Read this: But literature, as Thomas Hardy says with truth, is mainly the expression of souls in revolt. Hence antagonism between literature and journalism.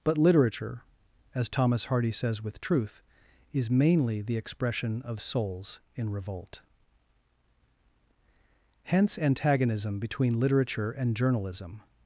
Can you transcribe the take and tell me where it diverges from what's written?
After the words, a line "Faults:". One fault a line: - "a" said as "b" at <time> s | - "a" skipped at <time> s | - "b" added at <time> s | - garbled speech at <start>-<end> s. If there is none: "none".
But literature, as Thomas Hardy says with truth, is mainly the expression of souls in revolt. Hence antagonism between literature and journalism.
Faults:
none